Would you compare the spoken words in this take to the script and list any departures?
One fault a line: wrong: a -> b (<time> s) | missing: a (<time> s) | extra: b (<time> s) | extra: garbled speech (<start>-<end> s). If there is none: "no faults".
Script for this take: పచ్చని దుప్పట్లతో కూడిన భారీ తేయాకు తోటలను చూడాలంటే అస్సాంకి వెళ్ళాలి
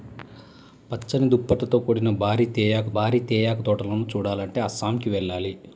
extra: భారీ తేయాకు (3.0 s)